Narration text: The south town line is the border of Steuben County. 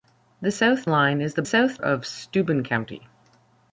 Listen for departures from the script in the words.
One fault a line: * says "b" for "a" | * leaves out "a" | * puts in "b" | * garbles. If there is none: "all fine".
* leaves out "town"
* says "south" for "border"